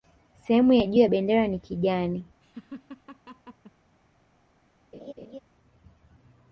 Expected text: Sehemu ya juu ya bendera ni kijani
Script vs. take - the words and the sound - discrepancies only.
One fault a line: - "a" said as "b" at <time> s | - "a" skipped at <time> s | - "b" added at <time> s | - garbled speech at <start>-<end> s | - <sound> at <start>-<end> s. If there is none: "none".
- laugh at 2.4-3.7 s
- laugh at 4.9-5.4 s